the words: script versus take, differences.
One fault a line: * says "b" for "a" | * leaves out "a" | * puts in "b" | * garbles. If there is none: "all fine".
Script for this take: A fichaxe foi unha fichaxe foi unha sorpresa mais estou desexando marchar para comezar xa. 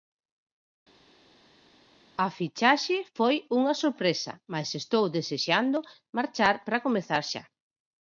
* leaves out "fichaxe foi unha"